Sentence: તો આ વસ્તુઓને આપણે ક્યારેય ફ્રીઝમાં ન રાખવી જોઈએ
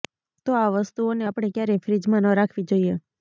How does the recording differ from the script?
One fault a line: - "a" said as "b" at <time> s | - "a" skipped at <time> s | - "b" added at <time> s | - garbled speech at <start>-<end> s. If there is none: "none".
none